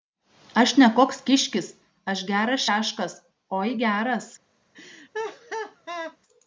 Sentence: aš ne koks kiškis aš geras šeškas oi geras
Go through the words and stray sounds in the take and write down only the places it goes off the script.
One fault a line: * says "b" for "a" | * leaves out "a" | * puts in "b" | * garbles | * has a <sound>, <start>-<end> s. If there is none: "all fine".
* has a laugh, 4.7-6.2 s